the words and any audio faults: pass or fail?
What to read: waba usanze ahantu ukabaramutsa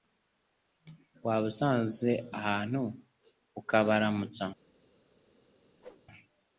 fail